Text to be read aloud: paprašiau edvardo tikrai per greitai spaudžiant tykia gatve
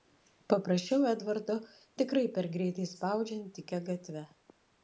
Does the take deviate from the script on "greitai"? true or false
false